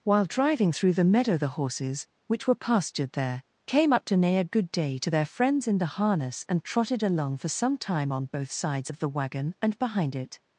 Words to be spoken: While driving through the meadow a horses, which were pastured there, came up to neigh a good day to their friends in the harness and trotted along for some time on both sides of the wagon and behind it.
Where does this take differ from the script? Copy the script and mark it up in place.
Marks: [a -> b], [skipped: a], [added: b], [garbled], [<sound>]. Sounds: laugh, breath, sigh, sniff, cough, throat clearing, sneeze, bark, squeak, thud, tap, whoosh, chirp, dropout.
While driving through the meadow [a -> the] horses, which were pastured there, came up to neigh a good day to their friends in the harness and trotted along for some time on both sides of the wagon and behind it.